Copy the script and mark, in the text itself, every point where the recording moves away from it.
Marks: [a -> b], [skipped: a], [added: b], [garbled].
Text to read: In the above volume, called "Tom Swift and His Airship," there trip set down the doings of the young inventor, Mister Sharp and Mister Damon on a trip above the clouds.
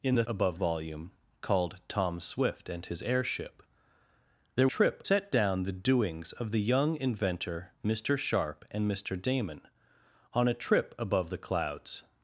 In the above volume, called "Tom Swift and His Airship," there trip set down the doings of the young inventor, Mister Sharp and Mister Damon on a trip above the clouds.